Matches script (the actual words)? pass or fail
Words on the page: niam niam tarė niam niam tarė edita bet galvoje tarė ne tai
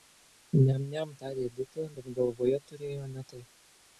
fail